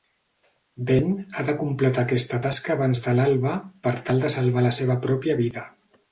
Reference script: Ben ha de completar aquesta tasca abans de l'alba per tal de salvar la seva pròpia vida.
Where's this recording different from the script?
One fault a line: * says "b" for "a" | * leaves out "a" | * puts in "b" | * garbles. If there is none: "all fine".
all fine